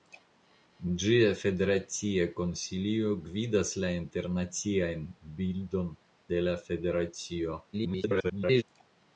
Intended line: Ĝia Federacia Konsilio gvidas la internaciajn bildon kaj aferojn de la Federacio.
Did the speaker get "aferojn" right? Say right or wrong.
wrong